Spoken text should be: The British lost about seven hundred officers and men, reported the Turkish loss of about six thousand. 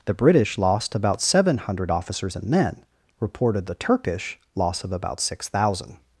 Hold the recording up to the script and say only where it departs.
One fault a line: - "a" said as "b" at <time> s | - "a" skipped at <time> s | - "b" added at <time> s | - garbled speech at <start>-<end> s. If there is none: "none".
none